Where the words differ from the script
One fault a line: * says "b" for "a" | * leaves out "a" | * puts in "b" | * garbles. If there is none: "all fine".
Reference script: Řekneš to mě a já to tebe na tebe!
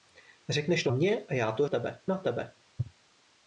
all fine